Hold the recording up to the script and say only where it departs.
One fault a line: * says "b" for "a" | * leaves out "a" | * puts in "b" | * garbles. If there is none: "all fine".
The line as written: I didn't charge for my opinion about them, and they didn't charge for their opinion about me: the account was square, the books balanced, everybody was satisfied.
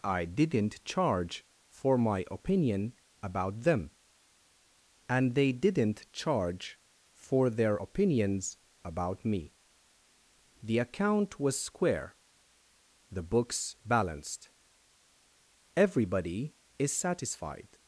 * says "opinions" for "opinion"
* says "is" for "was"